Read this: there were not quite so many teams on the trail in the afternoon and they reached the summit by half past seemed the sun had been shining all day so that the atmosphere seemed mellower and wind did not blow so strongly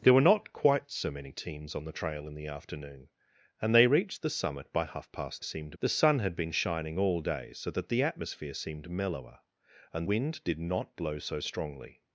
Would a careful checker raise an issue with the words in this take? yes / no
no